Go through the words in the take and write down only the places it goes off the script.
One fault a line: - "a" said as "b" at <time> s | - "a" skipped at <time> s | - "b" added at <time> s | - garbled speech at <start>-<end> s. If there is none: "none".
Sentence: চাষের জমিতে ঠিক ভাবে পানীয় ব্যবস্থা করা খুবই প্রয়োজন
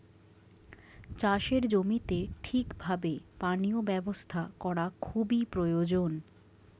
none